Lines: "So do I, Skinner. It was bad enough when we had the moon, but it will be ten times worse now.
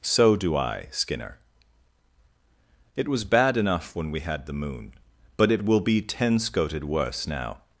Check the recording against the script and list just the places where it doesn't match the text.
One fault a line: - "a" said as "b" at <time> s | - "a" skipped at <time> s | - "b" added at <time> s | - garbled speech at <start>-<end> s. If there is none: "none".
- "times" said as "scoted" at 6.4 s